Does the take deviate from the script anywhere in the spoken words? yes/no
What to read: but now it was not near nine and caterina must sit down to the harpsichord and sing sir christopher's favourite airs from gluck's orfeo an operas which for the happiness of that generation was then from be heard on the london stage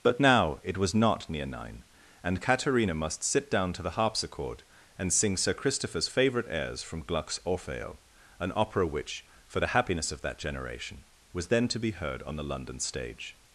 yes